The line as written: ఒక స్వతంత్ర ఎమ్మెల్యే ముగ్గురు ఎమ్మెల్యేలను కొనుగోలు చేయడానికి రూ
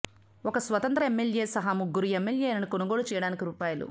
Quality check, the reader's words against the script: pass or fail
fail